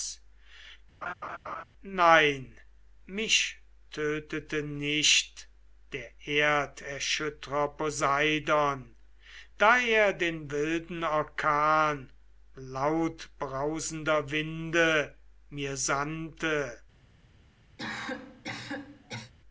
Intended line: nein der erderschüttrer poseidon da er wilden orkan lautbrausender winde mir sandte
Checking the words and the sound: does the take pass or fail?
fail